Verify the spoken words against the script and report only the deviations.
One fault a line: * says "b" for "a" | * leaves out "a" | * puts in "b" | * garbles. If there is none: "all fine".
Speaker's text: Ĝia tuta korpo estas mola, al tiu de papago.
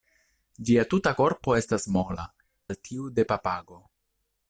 all fine